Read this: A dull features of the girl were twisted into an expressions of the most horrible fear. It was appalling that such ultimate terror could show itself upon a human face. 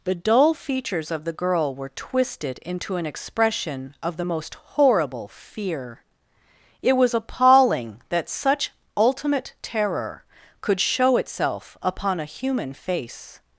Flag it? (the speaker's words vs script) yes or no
yes